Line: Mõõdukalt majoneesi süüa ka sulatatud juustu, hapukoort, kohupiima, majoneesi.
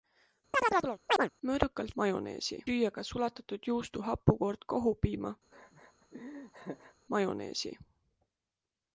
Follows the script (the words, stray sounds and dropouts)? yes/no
no